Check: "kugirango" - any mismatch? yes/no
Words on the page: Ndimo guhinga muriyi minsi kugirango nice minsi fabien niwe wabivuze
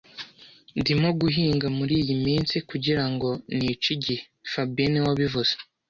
no